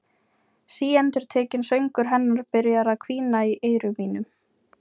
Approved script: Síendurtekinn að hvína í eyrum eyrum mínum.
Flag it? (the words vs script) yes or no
yes